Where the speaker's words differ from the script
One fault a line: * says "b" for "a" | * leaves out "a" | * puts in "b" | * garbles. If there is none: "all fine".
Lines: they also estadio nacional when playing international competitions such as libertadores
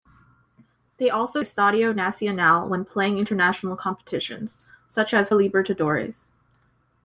all fine